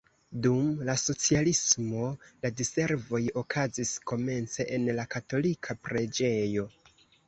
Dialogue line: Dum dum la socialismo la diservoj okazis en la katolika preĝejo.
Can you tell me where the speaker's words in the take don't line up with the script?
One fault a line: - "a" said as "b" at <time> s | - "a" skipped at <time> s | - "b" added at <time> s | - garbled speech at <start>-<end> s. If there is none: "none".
- "dum" skipped at 0.7 s
- "komence" added at 4.2 s